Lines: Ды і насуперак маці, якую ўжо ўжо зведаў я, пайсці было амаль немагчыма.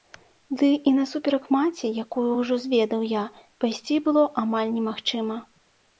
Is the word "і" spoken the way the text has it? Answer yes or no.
yes